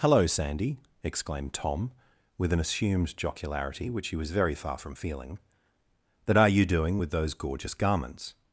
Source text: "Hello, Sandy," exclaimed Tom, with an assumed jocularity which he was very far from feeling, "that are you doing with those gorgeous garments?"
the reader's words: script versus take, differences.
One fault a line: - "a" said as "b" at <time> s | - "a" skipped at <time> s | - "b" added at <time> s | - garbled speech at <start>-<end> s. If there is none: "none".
none